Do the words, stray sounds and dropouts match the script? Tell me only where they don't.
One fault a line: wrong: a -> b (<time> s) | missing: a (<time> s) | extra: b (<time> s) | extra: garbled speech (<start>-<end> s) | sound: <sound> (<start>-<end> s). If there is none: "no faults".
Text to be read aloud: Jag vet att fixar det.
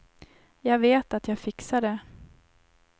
extra: jag (1.3 s)